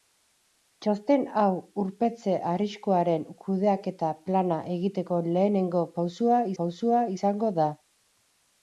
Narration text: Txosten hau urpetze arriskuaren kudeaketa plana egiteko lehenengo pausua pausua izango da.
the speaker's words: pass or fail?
pass